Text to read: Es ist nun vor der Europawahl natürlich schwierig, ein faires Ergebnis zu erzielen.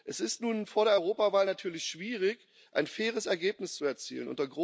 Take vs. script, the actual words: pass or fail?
pass